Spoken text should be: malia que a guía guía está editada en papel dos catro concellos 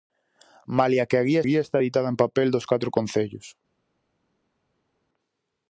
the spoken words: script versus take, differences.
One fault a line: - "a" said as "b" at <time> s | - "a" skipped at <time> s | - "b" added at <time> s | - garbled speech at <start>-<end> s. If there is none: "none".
none